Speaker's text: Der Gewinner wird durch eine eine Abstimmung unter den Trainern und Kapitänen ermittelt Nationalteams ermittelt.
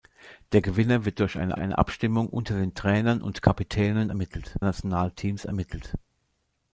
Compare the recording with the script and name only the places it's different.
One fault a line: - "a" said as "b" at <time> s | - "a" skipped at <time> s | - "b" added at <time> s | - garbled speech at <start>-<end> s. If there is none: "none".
none